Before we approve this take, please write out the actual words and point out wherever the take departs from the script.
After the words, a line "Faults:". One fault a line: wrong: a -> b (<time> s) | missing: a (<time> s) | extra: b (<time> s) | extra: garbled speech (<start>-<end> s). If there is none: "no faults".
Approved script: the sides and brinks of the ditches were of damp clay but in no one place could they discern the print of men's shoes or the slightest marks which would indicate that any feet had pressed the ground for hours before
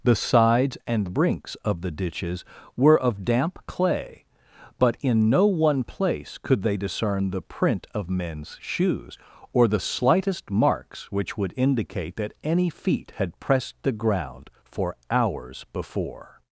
the sides and brinks of the ditches were of damp clay but in no one place could they discern the print of men's shoes or the slightest marks which would indicate that any feet had pressed the ground for hours before
Faults:
no faults